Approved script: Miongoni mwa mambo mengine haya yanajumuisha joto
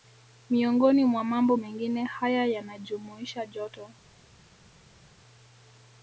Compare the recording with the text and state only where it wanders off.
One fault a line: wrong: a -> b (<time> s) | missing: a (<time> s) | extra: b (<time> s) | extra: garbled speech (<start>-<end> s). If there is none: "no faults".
no faults